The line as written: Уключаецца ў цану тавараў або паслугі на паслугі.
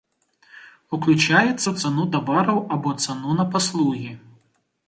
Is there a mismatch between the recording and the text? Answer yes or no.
yes